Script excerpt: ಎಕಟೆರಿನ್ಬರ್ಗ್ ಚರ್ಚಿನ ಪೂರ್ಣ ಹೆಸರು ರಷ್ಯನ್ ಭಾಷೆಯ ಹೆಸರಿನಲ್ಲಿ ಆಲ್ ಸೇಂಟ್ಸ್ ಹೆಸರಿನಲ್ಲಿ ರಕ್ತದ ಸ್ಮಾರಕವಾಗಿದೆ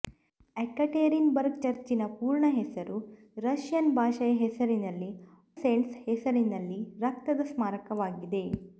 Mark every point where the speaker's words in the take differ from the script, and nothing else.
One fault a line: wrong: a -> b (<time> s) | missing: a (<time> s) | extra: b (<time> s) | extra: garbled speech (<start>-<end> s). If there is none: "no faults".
missing: ಆಲ್ (5.1 s)